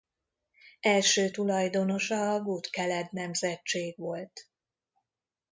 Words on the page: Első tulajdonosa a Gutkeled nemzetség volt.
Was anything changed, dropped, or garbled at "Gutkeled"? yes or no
no